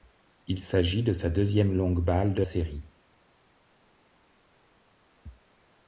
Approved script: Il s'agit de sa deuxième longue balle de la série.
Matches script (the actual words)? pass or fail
fail